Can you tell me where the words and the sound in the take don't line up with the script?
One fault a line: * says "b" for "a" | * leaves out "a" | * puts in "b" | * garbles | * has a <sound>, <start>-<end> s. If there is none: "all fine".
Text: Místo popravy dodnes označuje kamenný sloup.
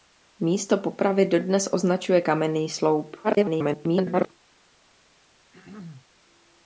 * garbles
* has a throat clearing, 5.5-6.1 s